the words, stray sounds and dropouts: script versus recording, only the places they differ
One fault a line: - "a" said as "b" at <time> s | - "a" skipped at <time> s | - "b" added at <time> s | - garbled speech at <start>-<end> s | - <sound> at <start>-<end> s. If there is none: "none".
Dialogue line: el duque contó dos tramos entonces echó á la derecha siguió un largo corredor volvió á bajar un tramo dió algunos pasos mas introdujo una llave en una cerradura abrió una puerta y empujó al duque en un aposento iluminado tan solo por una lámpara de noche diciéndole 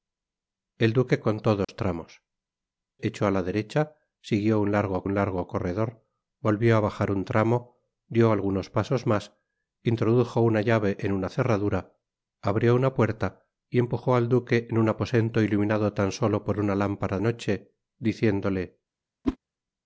- dropout at 1.6-1.7 s
- "entonces" skipped at 2.2 s
- "un largo" added at 5.0 s
- "de" skipped at 17.2 s
- whoosh at 19.2-19.4 s